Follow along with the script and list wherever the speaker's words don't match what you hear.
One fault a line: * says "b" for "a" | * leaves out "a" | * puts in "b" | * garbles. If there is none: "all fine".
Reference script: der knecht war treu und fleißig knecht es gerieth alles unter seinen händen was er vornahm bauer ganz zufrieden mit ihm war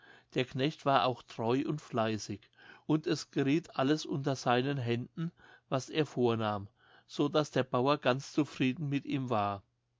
* puts in "auch"
* says "und" for "knecht"
* puts in "so daß der"